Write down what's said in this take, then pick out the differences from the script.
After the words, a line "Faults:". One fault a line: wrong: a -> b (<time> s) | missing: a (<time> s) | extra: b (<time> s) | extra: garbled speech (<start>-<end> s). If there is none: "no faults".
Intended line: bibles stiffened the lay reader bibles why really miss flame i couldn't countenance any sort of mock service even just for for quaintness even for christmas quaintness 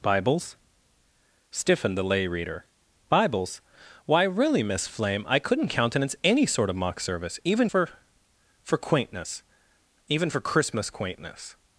bibles stiffened the lay reader bibles why really miss flame i couldn't countenance any sort of mock service even for for quaintness even for christmas quaintness
Faults:
missing: just (7.7 s)